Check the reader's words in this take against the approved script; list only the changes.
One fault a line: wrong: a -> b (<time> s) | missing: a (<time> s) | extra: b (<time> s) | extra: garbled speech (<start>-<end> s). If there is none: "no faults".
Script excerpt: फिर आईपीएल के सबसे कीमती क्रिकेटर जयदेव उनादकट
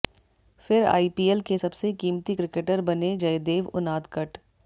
extra: बने (2.9 s)